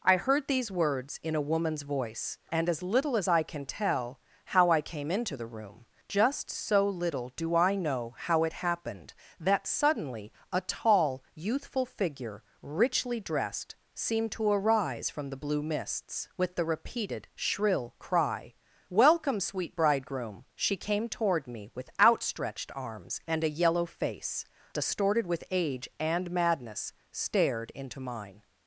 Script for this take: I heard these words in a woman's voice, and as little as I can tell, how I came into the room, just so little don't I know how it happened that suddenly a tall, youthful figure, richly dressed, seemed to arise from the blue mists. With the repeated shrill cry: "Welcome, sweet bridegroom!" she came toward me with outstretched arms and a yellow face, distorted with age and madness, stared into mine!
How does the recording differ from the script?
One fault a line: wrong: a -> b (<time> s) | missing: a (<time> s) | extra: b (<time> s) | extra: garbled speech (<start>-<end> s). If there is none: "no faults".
wrong: don't -> do (7.3 s)